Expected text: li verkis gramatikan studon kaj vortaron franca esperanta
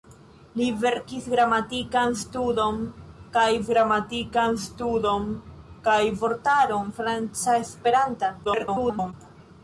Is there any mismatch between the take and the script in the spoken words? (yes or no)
yes